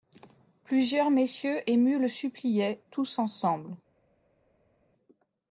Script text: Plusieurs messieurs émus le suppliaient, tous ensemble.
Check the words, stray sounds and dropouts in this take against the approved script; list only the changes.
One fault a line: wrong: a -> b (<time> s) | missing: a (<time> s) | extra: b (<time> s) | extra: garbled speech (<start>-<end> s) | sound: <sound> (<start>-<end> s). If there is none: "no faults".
no faults